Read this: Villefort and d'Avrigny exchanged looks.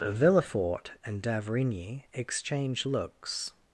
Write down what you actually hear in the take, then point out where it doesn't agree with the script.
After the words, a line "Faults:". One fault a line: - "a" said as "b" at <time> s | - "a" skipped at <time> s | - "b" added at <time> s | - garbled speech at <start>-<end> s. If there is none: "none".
Villefort and d'Avrigny exchange looks.
Faults:
- "exchanged" said as "exchange" at 2.1 s